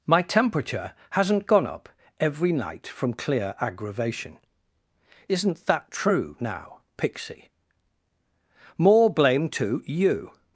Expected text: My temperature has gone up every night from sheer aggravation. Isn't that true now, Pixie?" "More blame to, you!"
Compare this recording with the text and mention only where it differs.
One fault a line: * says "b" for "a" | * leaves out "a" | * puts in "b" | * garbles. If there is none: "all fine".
* says "hasn't" for "has"
* says "clear" for "sheer"